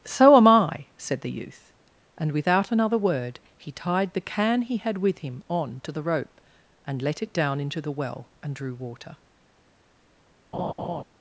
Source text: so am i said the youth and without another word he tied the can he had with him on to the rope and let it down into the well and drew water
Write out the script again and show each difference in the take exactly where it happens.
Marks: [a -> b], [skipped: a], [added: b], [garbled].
so am i said the youth and without another word he tied the can he had with him on to the rope and let it down into the well and drew water